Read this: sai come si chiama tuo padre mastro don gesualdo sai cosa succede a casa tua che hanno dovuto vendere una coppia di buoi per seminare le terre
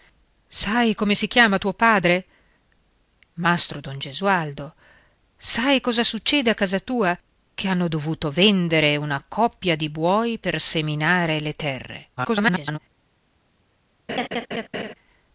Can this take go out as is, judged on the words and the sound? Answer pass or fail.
fail